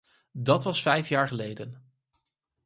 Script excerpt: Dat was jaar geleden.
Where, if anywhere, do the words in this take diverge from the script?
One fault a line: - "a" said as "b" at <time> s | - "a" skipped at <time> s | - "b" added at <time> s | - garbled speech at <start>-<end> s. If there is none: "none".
- "vijf" added at 0.8 s